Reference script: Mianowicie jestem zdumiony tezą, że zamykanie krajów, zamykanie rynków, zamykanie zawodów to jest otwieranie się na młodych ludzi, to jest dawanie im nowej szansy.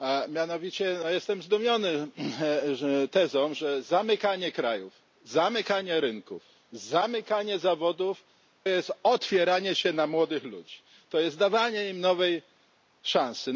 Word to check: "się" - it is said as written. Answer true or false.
true